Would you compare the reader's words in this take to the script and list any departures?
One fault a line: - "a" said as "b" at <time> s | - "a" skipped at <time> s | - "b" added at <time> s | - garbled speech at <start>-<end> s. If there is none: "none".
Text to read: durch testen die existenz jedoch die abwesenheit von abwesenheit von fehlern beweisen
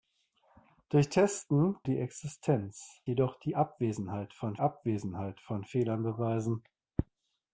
none